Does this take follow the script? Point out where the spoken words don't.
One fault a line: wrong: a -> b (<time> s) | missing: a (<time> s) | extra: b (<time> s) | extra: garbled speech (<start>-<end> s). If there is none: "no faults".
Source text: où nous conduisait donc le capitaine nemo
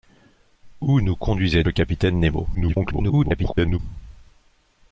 missing: donc (1.6 s)
extra: garbled speech (2.5-3.8 s)